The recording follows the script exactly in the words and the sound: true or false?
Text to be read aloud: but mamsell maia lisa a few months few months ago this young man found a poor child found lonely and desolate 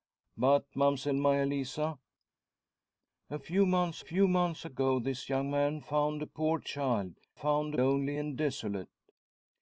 true